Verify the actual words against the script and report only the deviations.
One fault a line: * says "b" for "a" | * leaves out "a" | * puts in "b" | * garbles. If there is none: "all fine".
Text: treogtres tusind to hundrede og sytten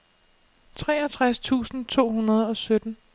all fine